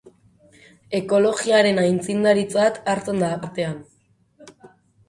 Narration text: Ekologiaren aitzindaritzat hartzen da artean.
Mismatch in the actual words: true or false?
false